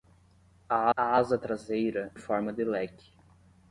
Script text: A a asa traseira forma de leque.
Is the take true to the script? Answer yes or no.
yes